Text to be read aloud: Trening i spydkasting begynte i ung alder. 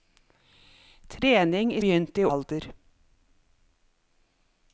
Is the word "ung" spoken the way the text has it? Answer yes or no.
no